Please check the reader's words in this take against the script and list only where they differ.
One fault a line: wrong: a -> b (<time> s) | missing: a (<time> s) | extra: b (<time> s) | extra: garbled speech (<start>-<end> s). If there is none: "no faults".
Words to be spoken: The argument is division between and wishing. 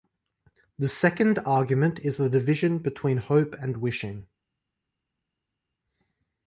extra: second (0.9 s)
extra: the (2.2 s)
extra: hope (3.2 s)